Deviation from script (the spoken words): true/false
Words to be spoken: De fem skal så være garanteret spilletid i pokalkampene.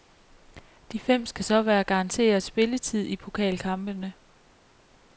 false